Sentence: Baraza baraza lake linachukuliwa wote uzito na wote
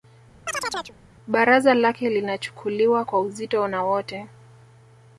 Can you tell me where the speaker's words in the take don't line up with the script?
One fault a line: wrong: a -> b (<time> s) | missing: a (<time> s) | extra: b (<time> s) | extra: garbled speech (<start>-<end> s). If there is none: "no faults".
missing: baraza (1.7 s)
wrong: wote -> kwa (3.0 s)